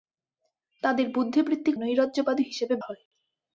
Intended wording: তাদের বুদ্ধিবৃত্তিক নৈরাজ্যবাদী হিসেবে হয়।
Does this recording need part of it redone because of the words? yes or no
no